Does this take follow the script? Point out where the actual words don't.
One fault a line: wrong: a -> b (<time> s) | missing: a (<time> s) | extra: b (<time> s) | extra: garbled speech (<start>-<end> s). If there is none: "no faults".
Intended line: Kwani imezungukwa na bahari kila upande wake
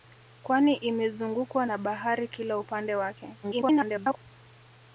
extra: garbled speech (3.4-4.2 s)